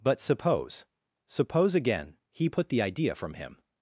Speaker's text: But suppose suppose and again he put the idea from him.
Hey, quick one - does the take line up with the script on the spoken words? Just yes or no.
no